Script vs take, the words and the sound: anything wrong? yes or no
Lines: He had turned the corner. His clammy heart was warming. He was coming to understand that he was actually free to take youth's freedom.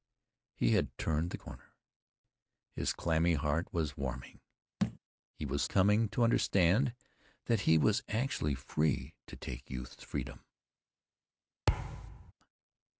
yes